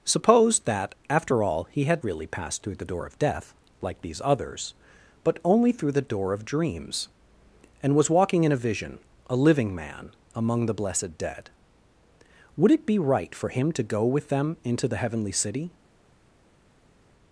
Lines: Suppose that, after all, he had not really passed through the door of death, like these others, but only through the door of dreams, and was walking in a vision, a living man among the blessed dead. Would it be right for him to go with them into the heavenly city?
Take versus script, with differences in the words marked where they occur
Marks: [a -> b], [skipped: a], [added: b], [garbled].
Suppose that, after all, he had [skipped: not] really passed through the door of death, like these others, but only through the door of dreams, and was walking in a vision, a living man among the blessed dead. Would it be right for him to go with them into the heavenly city?